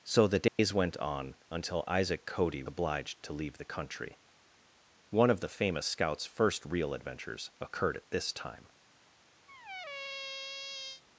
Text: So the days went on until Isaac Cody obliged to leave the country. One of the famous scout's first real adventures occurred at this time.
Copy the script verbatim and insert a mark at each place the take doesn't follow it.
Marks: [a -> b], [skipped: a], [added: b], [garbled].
So the days went on until Isaac Cody obliged to leave the country. One of the famous scout's first real adventures occurred at this time.